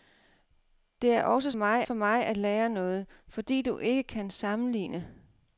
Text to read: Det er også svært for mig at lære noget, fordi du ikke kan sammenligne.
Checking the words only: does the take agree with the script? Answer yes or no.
no